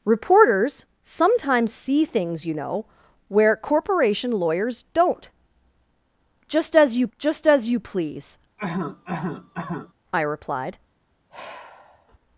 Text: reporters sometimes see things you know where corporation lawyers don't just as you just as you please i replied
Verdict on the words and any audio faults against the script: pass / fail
fail